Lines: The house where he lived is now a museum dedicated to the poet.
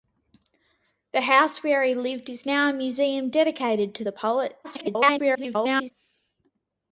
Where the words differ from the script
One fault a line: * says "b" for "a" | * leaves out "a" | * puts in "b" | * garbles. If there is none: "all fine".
* garbles